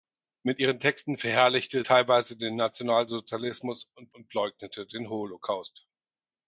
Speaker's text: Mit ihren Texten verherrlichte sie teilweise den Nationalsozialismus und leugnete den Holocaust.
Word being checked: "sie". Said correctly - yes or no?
no